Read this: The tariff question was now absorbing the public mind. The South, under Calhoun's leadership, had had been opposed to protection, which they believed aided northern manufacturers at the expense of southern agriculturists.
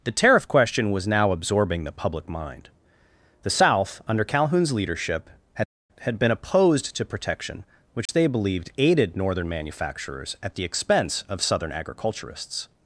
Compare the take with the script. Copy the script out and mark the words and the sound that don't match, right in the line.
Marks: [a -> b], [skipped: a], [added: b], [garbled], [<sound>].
The tariff question was now absorbing the public mind. The South, under Calhoun's leadership, had had been opposed to protection, which [dropout] they believed aided northern manufacturers at the expense of southern agriculturists.